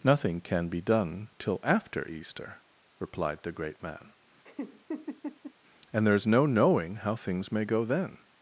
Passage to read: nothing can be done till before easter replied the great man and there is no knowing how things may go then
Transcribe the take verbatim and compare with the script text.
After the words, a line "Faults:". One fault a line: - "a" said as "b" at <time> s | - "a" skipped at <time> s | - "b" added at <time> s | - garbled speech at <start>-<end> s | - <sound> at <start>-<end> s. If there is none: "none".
nothing can be done till after easter replied the great man and there is no knowing how things may go then
Faults:
- "before" said as "after" at 1.6 s
- laugh at 4.4-5.5 s